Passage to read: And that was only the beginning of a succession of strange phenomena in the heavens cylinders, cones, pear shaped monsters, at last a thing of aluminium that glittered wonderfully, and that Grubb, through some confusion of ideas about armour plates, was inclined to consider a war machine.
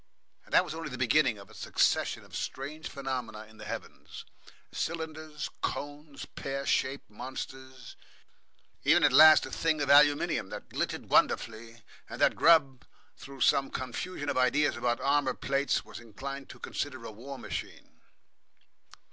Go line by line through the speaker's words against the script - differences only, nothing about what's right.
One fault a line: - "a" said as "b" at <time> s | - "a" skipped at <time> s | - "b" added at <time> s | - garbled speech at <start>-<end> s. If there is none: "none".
- "even" added at 8.8 s